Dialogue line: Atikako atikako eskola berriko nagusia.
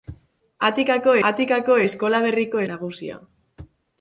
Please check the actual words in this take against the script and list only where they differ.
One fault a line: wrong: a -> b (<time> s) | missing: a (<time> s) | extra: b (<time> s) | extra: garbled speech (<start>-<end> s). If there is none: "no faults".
no faults